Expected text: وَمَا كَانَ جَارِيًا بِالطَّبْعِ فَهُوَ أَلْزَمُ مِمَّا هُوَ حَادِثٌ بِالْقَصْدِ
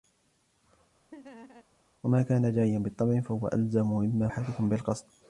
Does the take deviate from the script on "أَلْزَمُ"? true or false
false